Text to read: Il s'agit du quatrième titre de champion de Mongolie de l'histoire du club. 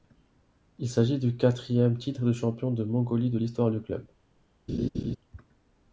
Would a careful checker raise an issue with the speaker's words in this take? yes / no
no